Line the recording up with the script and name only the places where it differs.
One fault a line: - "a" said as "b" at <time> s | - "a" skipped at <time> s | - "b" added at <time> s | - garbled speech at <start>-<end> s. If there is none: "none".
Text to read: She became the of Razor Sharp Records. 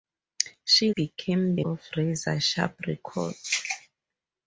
none